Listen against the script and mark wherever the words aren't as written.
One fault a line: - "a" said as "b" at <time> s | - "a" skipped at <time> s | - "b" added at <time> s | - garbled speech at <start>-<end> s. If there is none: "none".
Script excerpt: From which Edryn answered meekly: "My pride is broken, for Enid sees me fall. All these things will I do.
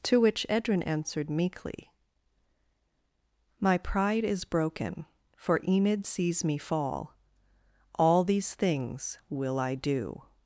- "From" said as "To" at 0.0 s